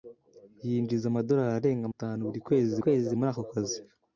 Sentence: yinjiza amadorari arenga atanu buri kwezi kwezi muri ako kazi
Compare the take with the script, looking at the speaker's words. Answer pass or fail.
pass